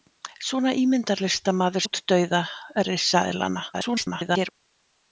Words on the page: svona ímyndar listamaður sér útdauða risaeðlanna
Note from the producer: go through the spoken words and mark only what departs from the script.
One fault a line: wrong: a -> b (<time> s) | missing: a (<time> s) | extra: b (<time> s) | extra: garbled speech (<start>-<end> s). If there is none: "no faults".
missing: sér (1.9 s)
extra: garbled speech (3.7-4.5 s)